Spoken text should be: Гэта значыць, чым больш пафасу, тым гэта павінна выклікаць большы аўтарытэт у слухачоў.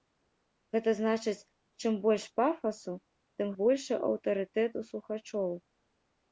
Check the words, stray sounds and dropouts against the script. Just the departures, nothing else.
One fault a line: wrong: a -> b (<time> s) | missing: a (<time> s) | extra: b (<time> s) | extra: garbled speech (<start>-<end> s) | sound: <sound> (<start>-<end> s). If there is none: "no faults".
missing: гэта павінна выклікаць (3.5 s)